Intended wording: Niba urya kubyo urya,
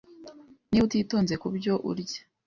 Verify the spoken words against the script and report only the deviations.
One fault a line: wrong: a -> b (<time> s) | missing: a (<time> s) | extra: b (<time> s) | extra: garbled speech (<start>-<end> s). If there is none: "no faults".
wrong: urya -> utitonze (0.8 s)